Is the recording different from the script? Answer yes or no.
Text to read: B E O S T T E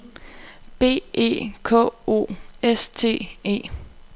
yes